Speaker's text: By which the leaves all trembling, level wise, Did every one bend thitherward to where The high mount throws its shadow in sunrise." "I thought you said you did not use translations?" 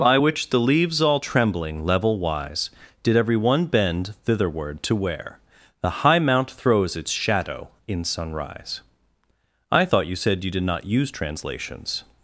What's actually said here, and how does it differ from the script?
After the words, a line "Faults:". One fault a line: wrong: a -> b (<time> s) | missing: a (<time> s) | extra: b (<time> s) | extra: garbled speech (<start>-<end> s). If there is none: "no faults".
By which the leaves all trembling, level wise, Did every one bend thitherward to where The high mount throws its shadow in sunrise." "I thought you said you did not use translations?"
Faults:
no faults